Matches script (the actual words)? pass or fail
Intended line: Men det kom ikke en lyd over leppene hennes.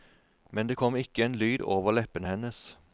pass